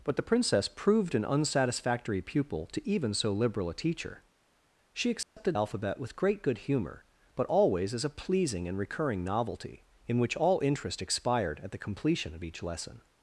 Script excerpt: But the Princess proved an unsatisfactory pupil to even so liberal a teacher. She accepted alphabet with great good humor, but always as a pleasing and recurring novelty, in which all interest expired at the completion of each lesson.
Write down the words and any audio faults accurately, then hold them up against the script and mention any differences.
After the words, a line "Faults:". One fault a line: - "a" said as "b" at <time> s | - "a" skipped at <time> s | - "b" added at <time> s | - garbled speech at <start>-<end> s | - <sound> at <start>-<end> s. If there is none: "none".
But the Princess proved an unsatisfactory pupil to even so liberal a teacher. She accepted alphabet with great good humor, but always as a pleasing and recurring novelty, in which all interest expired at the completion of each lesson.
Faults:
- dropout at 5.2-5.4 s